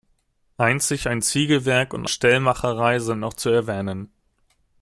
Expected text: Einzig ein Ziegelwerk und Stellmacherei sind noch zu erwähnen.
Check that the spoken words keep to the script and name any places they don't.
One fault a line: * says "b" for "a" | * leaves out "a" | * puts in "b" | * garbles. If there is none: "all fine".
all fine